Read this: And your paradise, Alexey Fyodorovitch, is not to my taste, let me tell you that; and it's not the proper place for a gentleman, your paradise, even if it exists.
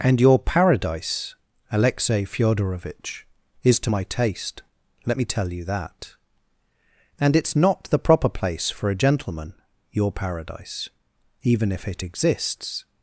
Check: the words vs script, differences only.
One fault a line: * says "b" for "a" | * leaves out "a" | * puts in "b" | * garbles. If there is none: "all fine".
* leaves out "not"